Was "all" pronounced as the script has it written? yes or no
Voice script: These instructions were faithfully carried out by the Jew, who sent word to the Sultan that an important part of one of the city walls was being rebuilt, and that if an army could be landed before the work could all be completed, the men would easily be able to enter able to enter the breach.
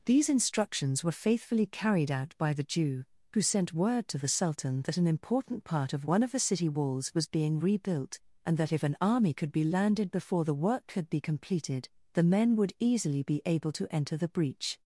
no